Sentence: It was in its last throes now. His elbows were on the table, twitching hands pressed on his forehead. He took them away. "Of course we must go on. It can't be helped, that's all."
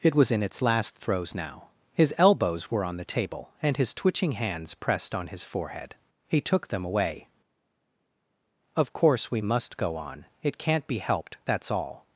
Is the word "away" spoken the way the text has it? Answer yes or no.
yes